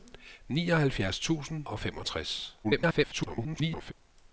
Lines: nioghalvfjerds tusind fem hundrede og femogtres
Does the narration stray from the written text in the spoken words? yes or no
yes